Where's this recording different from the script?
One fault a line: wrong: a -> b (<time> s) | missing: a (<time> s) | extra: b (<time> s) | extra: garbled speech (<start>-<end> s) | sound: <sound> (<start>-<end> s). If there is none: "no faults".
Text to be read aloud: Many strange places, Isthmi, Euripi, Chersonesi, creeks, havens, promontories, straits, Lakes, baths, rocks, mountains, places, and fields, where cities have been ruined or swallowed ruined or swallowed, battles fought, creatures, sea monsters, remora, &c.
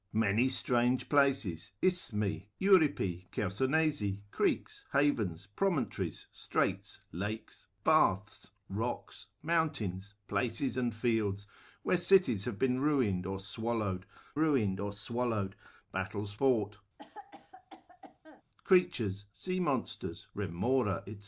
sound: cough (17.0-18.4 s)